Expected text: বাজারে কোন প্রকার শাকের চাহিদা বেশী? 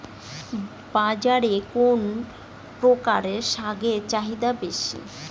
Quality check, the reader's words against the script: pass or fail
pass